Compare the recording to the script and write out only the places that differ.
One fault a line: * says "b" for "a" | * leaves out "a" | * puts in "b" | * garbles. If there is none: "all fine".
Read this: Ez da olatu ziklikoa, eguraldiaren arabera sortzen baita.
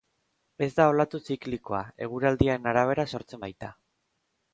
all fine